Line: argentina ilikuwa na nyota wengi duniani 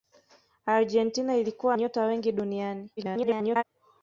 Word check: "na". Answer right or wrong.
wrong